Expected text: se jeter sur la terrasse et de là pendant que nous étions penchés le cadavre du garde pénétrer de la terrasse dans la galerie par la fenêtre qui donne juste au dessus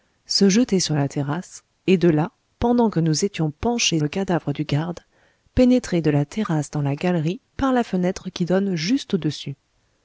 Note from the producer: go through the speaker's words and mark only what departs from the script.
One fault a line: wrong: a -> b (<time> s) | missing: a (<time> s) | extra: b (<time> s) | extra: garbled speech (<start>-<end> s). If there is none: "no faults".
no faults